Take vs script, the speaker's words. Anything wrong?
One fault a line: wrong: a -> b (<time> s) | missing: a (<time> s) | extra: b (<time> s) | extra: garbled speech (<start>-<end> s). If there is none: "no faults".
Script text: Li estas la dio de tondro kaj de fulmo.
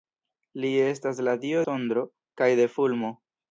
missing: de (1.6 s)